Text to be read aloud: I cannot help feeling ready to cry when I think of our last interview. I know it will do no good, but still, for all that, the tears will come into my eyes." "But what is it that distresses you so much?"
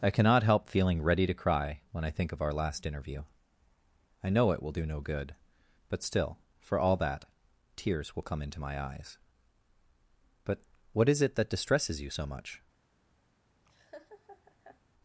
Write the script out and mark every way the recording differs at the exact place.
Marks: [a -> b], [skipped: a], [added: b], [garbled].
I cannot help feeling ready to cry when I think of our last interview. I know it will do no good, but still, for all that, [skipped: the] tears will come into my eyes." "But what is it that distresses you so much?"